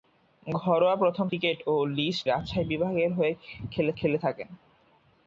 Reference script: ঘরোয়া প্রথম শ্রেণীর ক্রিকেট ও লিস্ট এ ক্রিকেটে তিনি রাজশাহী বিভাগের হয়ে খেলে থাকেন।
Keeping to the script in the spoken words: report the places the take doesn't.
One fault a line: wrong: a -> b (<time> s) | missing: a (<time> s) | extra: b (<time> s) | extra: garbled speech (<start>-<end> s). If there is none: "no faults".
missing: শ্রেণীর (1.2 s)
missing: এ ক্রিকেটে তিনি (2.3 s)
extra: খেলে (4.0 s)